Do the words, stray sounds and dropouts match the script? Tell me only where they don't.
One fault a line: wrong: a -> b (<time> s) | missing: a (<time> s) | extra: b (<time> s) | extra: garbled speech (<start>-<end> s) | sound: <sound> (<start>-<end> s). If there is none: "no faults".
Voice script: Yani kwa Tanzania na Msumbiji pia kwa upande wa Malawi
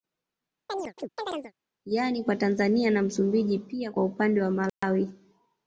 sound: chirp (0.7-1.5 s)
sound: dropout (4.7-4.8 s)